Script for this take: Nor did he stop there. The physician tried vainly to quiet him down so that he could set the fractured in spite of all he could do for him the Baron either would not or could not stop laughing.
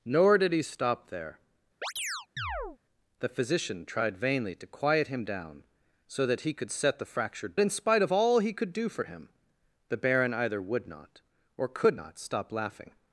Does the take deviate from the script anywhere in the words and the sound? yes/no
yes